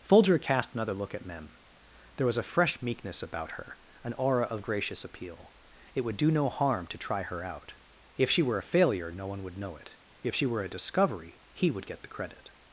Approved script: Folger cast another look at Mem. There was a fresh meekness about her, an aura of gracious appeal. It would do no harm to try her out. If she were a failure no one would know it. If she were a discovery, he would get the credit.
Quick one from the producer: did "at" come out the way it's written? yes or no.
yes